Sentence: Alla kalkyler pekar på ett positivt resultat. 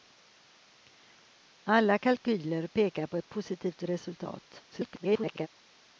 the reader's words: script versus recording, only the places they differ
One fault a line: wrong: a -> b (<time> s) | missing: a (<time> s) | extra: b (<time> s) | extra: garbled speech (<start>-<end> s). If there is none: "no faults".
extra: garbled speech (4.7-5.5 s)